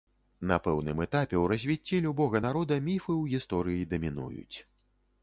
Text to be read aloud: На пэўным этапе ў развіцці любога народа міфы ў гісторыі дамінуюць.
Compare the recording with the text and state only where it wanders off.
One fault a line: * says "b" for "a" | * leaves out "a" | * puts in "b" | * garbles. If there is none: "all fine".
all fine